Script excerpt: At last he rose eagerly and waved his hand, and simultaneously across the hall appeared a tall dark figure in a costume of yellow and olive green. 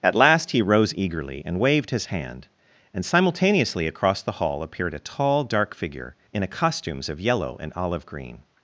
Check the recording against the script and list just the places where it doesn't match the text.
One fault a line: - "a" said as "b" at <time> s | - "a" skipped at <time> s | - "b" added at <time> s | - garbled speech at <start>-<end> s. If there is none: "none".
- "costume" said as "costumes" at 6.5 s